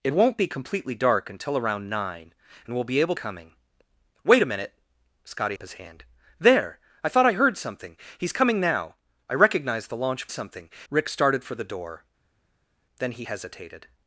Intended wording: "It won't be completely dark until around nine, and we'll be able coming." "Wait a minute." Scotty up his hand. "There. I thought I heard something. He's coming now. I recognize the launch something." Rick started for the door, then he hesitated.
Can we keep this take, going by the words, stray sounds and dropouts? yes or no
yes